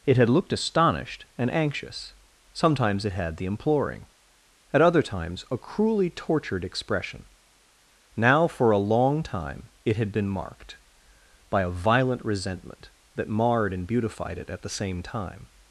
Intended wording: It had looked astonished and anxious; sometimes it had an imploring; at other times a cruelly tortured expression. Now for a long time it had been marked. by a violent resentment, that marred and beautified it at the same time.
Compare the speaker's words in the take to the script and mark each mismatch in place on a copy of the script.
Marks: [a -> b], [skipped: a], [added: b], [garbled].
It had looked astonished and anxious; sometimes it had [an -> the] imploring; at other times a cruelly tortured expression. Now for a long time it had been marked. by a violent resentment, that marred and beautified it at the same time.